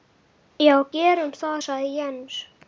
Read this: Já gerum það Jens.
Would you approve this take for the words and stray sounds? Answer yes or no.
no